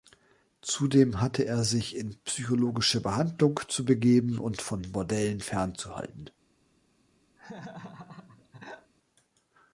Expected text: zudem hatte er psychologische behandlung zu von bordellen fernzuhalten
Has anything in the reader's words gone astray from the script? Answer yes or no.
yes